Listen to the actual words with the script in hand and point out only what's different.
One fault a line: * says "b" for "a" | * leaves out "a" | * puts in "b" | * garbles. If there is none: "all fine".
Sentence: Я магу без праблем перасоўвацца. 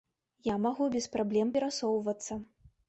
all fine